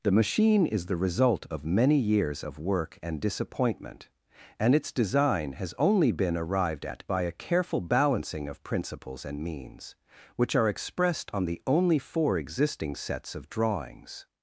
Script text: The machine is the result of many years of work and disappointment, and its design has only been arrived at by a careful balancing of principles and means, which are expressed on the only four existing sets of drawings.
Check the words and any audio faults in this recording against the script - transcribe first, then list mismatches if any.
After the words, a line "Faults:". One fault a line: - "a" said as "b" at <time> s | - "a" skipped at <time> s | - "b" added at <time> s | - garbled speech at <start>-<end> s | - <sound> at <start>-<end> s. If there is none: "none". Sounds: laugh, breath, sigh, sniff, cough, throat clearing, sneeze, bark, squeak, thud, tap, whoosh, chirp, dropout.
The machine is the result of many years of work and disappointment, and its design has only been arrived at by a careful balancing of principles and means, which are expressed on the only four existing sets of drawings.
Faults:
none